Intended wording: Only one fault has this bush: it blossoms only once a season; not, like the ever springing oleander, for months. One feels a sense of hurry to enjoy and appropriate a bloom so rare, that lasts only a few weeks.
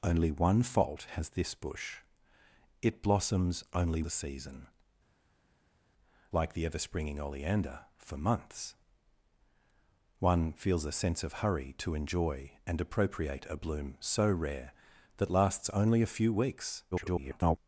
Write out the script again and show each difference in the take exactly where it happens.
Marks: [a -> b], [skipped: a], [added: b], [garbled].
Only one fault has this bush: it blossoms only [skipped: once] a season; [skipped: not,] like the ever springing oleander, for months. One feels a sense of hurry to enjoy and appropriate a bloom so rare, that lasts only a few weeks. [garbled]